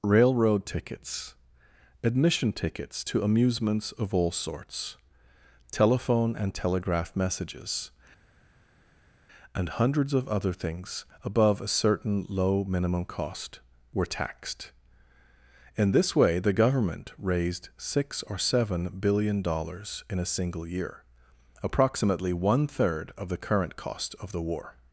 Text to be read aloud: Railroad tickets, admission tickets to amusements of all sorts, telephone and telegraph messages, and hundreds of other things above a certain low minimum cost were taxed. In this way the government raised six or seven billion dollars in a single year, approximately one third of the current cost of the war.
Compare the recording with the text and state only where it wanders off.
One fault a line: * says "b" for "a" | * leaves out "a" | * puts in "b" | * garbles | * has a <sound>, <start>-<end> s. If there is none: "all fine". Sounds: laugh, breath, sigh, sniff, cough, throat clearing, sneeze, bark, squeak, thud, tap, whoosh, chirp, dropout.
all fine